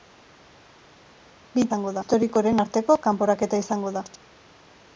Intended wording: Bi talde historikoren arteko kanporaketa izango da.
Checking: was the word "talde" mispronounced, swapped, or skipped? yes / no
yes